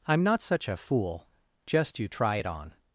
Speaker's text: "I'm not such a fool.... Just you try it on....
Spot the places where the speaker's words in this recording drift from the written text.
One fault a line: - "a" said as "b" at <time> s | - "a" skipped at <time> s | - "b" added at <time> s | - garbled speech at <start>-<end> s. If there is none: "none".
none